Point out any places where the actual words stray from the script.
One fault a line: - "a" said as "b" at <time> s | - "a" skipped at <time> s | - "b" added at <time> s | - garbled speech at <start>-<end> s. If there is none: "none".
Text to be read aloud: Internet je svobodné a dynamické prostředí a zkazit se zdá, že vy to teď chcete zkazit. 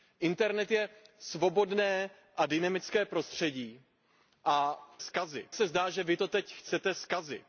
none